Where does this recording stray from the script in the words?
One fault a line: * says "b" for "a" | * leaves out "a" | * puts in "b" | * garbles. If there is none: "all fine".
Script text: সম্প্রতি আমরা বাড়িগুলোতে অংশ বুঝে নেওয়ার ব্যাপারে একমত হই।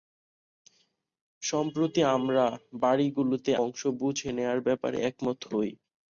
all fine